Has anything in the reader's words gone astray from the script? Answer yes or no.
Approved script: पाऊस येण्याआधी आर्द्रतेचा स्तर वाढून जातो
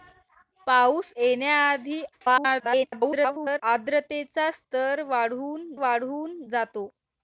yes